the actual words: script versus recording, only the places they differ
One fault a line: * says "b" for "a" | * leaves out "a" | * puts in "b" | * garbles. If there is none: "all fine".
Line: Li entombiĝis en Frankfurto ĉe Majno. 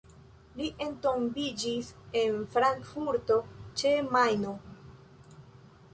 all fine